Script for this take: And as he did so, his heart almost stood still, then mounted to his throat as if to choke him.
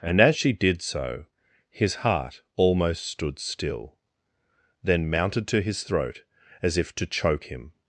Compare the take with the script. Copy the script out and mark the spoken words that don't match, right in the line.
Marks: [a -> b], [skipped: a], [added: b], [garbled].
And as [he -> she] did so, his heart almost stood still, then mounted to his throat as if to choke him.